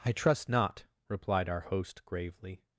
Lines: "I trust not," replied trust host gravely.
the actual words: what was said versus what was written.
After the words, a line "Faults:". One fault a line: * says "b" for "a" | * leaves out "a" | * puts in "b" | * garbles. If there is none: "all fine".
"I trust not," replied our host gravely.
Faults:
* says "our" for "trust"